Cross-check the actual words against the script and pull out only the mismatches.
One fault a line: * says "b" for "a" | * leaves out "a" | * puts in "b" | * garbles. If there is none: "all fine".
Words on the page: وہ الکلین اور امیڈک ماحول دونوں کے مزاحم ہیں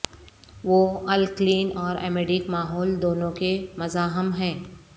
all fine